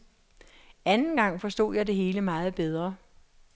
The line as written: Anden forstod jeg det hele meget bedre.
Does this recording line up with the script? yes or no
no